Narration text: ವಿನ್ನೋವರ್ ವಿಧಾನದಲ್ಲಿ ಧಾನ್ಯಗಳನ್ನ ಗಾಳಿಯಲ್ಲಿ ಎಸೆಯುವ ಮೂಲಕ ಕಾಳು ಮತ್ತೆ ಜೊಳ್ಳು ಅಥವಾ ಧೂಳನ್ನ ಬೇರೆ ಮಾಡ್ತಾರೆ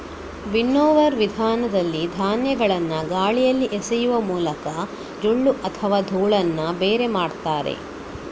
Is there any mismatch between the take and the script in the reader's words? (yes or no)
yes